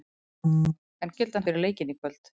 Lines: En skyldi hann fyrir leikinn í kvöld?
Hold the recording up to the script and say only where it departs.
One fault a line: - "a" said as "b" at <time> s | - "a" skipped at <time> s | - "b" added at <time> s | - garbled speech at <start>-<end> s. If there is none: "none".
none